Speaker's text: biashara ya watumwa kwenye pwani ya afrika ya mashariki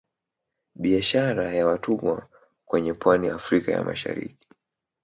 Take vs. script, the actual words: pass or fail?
pass